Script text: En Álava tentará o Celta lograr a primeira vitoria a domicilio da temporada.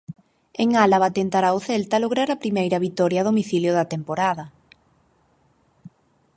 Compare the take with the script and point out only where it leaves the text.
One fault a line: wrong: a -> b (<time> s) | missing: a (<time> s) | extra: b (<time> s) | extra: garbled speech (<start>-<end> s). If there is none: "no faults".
no faults